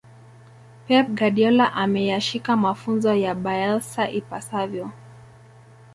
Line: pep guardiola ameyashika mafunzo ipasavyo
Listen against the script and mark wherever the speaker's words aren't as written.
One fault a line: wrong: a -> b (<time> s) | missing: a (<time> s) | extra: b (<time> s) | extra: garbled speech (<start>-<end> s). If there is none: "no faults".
extra: ya bielsa (3.1 s)